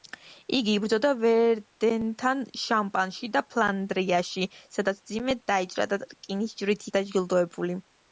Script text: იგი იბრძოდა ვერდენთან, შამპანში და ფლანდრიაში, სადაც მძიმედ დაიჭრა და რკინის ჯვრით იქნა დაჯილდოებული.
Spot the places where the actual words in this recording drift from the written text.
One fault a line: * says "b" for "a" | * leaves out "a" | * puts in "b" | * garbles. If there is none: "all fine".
* leaves out "იქნა"